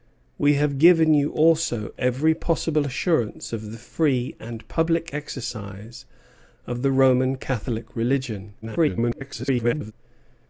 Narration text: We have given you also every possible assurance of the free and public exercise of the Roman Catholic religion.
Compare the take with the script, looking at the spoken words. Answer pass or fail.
fail